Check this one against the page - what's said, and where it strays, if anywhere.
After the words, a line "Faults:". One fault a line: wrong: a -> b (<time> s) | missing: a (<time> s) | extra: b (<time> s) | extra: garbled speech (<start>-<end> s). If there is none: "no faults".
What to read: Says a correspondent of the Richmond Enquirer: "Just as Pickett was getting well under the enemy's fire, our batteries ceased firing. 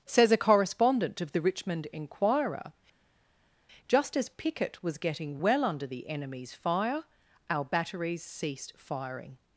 Says a correspondent of the Richmond Enquirer: "Just as Pickett was getting well under the enemy's fire, our batteries ceased firing.
Faults:
no faults